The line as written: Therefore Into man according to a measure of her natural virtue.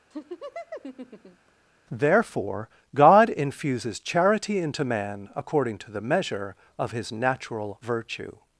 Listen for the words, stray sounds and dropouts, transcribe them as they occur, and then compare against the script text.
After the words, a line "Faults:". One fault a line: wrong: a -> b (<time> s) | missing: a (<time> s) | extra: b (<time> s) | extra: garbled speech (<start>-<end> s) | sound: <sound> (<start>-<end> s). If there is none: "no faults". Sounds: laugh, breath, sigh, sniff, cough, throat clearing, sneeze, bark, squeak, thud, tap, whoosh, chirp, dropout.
Therefore God infuses charity into man according to the measure of his natural virtue.
Faults:
sound: laugh (0.1-1.5 s)
extra: God infuses charity (2.9 s)
wrong: a -> the (5.9 s)
wrong: her -> his (6.9 s)